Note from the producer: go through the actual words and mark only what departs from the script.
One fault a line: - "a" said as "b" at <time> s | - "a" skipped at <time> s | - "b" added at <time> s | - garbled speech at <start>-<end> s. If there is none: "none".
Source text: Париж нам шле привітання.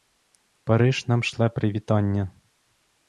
none